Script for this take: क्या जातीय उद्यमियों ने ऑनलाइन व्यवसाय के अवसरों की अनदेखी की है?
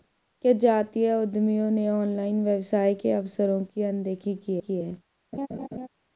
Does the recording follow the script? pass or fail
fail